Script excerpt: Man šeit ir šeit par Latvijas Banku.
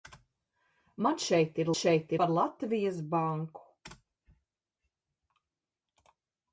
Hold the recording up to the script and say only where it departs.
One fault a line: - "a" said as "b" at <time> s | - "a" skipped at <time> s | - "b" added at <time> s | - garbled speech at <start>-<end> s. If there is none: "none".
none